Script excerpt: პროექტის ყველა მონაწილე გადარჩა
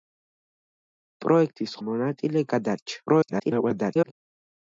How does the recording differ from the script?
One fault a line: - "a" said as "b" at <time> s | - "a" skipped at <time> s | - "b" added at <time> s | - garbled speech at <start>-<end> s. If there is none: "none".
- "ყველა" skipped at 1.8 s
- garbled speech at 3.1-4.1 s